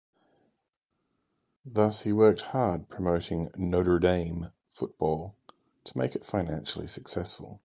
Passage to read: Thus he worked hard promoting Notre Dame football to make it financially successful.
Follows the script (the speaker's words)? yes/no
yes